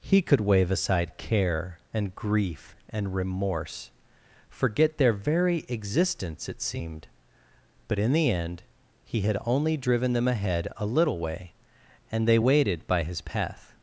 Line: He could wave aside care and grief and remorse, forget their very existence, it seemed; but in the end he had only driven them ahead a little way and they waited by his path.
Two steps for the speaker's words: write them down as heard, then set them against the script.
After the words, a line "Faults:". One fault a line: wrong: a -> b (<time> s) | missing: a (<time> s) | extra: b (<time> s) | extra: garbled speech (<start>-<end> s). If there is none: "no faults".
He could wave aside care and grief and remorse, forget their very existence, it seemed; but in the end he had only driven them ahead a little way and they waited by his path.
Faults:
no faults